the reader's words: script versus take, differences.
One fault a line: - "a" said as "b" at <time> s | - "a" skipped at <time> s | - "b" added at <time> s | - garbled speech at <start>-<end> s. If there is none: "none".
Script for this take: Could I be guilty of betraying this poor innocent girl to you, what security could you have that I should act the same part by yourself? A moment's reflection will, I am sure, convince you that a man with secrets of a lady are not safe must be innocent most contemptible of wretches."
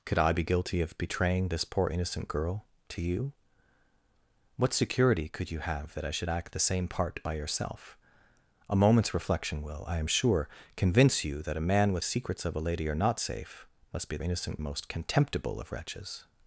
none